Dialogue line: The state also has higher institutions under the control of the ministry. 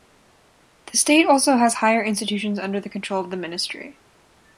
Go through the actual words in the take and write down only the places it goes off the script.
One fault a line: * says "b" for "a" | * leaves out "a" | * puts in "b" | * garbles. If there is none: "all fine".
all fine